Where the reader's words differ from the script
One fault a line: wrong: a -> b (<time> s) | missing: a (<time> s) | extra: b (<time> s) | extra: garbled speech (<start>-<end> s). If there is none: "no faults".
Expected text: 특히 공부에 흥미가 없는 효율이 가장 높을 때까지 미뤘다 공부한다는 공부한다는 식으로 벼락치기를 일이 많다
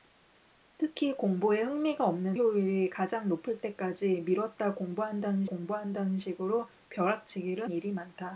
no faults